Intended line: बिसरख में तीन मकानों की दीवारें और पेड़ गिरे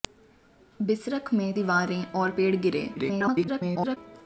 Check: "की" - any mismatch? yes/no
yes